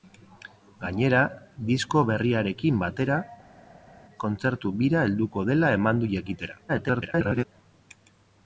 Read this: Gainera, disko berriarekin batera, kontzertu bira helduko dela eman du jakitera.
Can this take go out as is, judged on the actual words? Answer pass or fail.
fail